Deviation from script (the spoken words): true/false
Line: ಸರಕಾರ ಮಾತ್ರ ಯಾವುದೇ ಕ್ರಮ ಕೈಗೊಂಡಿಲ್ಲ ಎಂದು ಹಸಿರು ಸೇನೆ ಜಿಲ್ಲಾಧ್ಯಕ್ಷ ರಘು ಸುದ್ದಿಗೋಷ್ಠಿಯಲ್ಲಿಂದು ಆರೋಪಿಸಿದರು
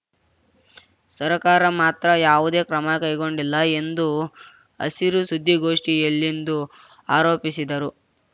true